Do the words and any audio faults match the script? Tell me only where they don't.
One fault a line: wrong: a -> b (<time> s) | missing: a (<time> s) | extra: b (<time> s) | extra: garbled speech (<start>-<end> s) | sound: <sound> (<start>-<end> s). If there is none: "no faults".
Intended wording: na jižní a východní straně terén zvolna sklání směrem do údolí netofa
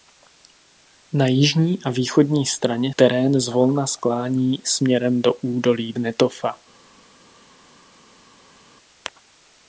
no faults